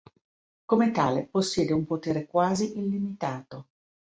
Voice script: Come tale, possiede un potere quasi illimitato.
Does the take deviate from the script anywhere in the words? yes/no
no